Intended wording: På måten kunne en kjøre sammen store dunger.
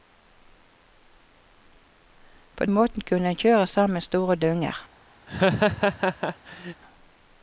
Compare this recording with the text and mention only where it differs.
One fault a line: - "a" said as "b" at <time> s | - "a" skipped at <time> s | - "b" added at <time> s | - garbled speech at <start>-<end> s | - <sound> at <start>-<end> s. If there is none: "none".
- laugh at 5.3-6.8 s